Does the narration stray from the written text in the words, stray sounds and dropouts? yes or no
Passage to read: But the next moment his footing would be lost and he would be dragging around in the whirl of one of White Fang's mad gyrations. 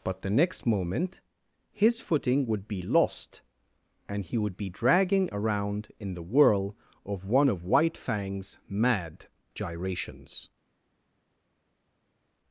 no